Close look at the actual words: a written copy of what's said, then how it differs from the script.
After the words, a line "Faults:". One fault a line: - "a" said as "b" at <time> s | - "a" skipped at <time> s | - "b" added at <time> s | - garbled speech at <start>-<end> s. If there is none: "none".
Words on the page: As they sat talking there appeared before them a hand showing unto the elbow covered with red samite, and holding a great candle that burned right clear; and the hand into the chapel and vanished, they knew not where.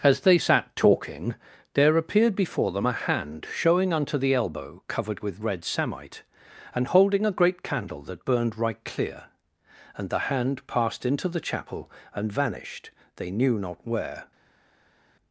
As they sat talking there appeared before them a hand showing unto the elbow covered with red samite, and holding a great candle that burned right clear; and the hand passed into the chapel and vanished, they knew not where.
Faults:
- "passed" added at 10.7 s